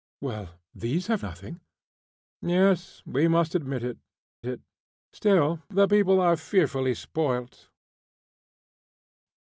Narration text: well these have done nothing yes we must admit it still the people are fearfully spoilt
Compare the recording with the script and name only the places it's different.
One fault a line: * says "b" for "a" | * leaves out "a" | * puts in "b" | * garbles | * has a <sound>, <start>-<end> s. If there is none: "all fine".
* leaves out "done"
* puts in "it"